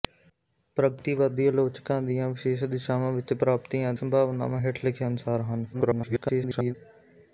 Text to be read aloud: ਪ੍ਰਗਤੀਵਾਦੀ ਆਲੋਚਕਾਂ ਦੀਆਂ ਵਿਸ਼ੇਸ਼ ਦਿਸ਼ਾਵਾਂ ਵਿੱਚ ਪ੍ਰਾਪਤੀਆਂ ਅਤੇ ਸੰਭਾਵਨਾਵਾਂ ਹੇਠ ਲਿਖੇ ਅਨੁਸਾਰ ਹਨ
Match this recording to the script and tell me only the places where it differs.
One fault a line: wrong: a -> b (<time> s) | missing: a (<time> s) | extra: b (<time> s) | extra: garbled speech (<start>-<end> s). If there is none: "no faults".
missing: ਅਤੇ (3.9 s)
extra: garbled speech (5.7-6.8 s)